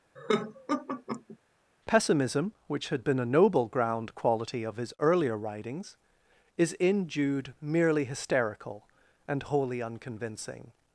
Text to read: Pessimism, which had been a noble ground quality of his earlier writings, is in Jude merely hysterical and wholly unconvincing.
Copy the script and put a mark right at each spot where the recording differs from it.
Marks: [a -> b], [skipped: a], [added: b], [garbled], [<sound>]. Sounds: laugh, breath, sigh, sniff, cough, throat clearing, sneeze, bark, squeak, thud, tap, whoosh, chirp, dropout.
[laugh] Pessimism, which had been a noble ground quality of his earlier writings, is in Jude merely hysterical and wholly unconvincing.